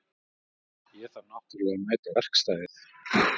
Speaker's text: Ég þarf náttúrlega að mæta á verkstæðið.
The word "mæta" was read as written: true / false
true